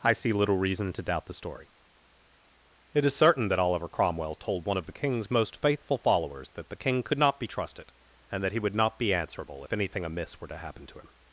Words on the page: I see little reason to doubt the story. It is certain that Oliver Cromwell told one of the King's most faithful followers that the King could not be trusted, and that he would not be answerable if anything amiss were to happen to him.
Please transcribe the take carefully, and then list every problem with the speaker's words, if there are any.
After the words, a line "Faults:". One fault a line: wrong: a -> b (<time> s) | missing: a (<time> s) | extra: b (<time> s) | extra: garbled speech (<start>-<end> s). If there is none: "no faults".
I see little reason to doubt the story. It is certain that Oliver Cromwell told one of the King's most faithful followers that the King could not be trusted, and that he would not be answerable if anything amiss were to happen to him.
Faults:
no faults